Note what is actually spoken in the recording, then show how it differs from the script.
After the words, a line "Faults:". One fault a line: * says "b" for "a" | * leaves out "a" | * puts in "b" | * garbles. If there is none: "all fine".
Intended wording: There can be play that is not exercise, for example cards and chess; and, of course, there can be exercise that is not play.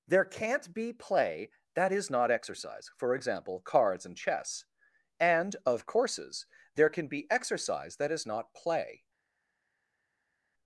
There can't be play that is not exercise, for example cards and chess; and, of courses, there can be exercise that is not play.
Faults:
* says "can't" for "can"
* says "courses" for "course"